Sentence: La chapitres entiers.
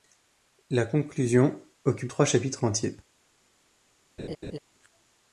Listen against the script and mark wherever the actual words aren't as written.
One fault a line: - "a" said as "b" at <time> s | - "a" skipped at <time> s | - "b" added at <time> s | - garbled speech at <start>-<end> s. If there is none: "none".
- "conclusion occupe trois" added at 0.9 s